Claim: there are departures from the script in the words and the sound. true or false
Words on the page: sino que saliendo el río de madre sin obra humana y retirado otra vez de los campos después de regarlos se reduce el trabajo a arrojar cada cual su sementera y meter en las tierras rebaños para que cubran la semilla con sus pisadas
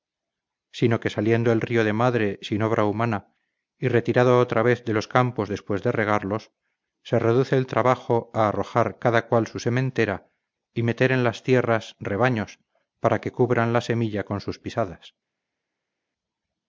false